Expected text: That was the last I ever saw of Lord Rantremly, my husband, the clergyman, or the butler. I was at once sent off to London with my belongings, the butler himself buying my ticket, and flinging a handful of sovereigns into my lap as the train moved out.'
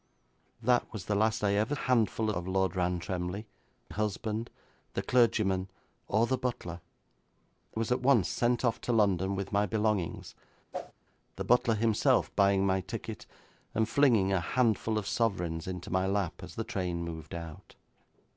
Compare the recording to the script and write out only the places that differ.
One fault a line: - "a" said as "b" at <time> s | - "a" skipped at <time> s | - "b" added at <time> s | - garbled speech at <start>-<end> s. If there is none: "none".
- "saw" said as "handful" at 1.7 s
- "my" skipped at 3.5 s
- "I" skipped at 6.8 s